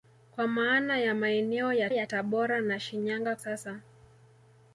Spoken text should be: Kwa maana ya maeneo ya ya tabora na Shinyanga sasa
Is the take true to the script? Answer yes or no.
yes